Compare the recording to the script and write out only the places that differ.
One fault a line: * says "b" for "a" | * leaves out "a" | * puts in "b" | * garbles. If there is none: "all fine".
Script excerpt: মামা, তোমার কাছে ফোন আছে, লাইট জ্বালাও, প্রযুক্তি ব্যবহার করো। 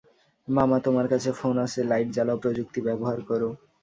all fine